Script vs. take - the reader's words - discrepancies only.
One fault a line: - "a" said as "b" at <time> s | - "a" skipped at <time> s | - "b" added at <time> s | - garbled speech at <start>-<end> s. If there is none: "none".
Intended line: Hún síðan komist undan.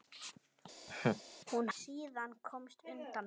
none